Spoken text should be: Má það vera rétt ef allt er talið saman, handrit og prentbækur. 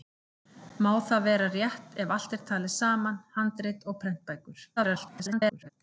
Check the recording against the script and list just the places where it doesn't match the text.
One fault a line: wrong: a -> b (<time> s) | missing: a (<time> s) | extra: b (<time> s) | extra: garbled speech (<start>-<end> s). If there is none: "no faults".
extra: garbled speech (4.8-5.7 s)